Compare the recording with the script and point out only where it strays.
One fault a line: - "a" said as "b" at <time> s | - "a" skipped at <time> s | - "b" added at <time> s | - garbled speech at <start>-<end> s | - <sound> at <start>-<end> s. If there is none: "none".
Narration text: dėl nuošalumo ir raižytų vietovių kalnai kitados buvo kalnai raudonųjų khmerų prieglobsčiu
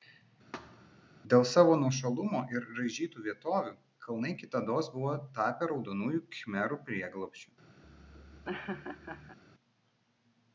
- thud at 0.5-1.1 s
- "savo" added at 1.5 s
- "kalnai" said as "tapę" at 5.4 s
- laugh at 7.8-9.4 s